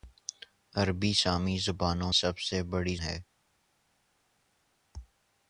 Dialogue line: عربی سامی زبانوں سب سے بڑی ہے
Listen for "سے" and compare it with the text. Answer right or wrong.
right